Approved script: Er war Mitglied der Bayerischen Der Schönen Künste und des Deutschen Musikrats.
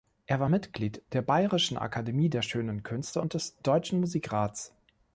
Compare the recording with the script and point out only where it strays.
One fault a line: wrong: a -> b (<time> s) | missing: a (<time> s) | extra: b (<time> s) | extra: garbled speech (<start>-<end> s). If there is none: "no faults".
extra: Akademie (1.8 s)